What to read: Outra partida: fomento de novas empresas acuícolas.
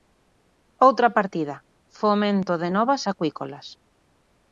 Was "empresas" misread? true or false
true